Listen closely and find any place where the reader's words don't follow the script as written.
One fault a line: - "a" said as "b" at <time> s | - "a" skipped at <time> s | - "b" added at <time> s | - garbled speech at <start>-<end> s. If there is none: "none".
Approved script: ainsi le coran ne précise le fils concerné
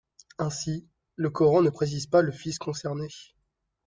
- "pas" added at 2.1 s